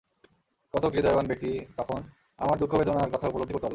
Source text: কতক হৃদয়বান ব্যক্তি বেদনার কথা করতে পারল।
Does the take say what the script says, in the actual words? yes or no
no